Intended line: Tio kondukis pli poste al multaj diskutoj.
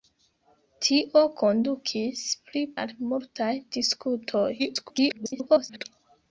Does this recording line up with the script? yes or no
no